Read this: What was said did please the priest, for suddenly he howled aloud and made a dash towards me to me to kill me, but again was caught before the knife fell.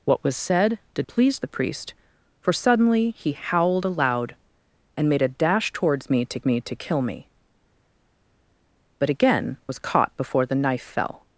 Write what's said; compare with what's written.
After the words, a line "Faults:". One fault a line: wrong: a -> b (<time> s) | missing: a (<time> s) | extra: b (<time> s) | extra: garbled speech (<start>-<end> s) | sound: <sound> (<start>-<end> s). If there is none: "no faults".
What was said did please the priest, for suddenly he howled aloud and made a dash towards me to me to kill me, but again was caught before the knife fell.
Faults:
no faults